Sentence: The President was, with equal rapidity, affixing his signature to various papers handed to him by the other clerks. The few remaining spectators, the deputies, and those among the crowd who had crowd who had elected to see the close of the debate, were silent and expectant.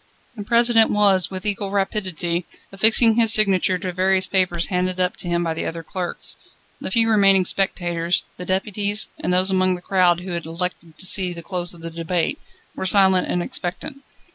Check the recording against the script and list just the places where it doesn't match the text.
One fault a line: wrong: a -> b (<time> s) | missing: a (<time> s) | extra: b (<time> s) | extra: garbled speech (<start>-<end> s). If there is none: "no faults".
extra: up (5.0 s)
missing: crowd who had (10.5 s)